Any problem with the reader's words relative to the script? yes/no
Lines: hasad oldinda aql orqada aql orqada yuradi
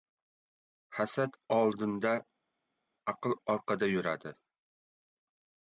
yes